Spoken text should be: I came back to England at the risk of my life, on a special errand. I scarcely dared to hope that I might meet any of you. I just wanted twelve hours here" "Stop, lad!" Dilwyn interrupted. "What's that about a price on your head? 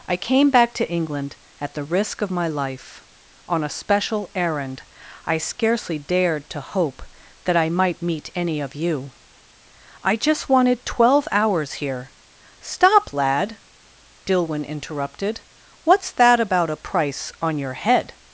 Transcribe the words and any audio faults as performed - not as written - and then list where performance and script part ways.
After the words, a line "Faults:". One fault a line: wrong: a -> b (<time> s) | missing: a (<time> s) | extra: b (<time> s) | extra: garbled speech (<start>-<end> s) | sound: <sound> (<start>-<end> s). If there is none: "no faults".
I came back to England at the risk of my life, on a special errand. I scarcely dared to hope that I might meet any of you. I just wanted twelve hours here" "Stop, lad!" Dilwyn interrupted. "What's that about a price on your head?
Faults:
no faults